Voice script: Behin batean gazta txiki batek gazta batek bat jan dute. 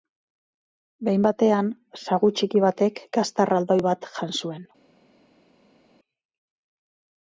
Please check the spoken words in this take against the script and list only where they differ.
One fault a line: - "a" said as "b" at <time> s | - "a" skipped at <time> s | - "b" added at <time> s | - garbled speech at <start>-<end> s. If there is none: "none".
- "gazta" said as "sagu" at 2.0 s
- "batek" said as "erraldoi" at 3.5 s
- "dute" said as "zuen" at 4.4 s